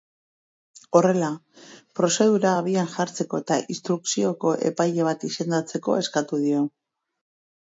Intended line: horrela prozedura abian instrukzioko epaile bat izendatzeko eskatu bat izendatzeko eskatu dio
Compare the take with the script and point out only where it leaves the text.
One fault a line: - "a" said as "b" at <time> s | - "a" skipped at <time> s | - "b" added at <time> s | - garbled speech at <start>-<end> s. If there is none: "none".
- "jartzeko eta" added at 2.9 s
- "bat izendatzeko eskatu" skipped at 6.4 s